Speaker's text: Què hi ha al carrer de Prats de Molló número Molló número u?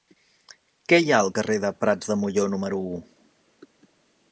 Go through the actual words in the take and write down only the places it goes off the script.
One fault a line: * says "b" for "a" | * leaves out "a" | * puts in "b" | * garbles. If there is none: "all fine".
* leaves out "Molló número"